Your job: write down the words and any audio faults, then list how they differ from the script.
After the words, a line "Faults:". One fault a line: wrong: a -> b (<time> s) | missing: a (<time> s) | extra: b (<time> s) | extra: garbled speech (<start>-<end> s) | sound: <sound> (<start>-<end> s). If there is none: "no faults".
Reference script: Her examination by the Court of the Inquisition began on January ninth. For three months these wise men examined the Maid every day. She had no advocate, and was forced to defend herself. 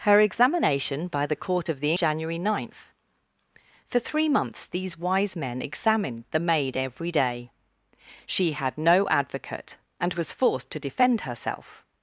Her examination by the Court of the January ninth. For three months these wise men examined the Maid every day. She had no advocate, and was forced to defend herself.
Faults:
missing: Inquisition began on (1.9 s)